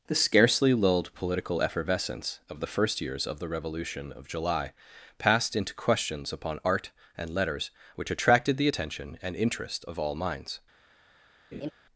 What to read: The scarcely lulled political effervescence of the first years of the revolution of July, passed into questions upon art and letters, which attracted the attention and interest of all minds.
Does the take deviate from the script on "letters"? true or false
false